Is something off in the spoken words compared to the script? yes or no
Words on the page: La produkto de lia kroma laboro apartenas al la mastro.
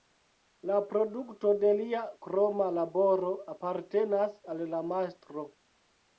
no